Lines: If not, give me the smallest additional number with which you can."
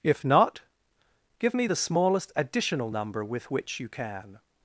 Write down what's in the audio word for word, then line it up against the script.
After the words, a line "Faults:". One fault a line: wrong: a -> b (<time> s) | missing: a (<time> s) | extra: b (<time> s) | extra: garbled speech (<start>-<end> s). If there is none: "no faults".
If not, give me the smallest additional number with which you can."
Faults:
no faults